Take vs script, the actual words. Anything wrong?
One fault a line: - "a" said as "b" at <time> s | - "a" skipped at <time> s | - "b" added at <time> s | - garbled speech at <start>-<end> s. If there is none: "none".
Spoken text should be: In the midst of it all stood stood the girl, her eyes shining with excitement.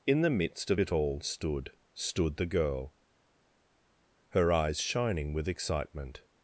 none